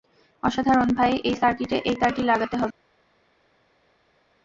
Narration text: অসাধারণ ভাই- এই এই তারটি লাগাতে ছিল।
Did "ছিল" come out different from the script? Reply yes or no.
yes